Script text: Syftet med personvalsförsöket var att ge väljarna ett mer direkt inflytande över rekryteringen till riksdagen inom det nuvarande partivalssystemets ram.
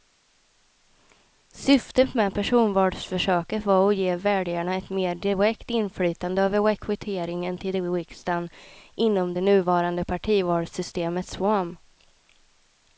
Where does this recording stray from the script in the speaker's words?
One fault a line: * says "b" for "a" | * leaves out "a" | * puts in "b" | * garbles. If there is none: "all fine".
all fine